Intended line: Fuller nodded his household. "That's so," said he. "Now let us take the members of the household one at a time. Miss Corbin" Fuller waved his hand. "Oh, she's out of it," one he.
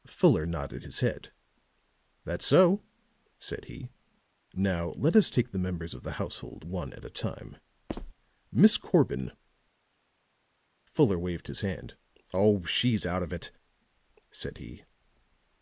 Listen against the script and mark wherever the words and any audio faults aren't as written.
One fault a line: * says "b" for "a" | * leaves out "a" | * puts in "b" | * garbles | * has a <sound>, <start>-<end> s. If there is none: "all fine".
* says "head" for "household"
* has a squeak, 7.9-8.1 s
* says "said" for "one"